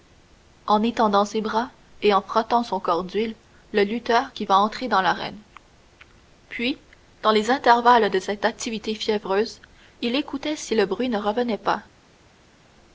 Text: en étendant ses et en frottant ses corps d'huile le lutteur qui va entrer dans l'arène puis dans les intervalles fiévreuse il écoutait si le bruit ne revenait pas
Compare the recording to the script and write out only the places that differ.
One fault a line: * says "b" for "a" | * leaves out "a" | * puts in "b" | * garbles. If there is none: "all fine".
* puts in "bras"
* says "son" for "ses"
* puts in "de cette activité"